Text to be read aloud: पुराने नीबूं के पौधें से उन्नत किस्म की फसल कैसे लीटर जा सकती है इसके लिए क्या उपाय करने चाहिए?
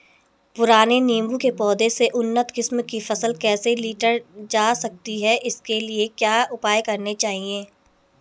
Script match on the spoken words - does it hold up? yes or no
yes